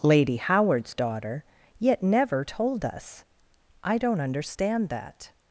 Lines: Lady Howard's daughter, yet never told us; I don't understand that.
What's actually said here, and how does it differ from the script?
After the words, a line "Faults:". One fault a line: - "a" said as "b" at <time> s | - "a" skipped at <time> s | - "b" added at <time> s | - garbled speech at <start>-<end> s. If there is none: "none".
Lady Howard's daughter, yet never told us; I don't understand that.
Faults:
none